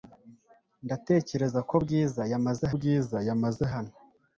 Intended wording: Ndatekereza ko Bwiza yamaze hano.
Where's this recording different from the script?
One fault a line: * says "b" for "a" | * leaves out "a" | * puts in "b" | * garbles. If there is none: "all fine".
* puts in "Bwiza yamaze"